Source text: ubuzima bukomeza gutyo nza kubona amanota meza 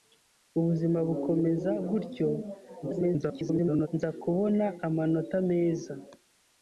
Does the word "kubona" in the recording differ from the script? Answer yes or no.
no